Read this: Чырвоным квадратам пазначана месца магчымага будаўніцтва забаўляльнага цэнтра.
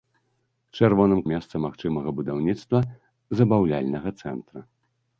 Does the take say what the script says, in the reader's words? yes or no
no